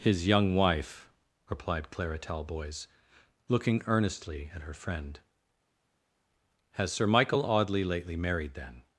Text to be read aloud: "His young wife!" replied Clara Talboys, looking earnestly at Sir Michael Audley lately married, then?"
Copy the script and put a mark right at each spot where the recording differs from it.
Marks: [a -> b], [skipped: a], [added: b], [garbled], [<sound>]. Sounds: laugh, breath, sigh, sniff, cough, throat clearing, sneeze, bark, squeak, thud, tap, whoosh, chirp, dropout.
"His young wife!" replied Clara Talboys, looking earnestly at [added: her friend Has] Sir Michael Audley lately married, then?"